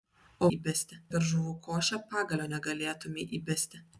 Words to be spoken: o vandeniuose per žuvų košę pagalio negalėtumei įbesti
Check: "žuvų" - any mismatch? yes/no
no